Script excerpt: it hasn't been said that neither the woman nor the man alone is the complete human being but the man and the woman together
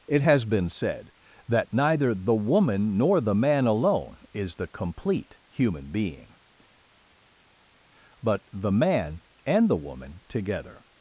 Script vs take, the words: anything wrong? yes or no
yes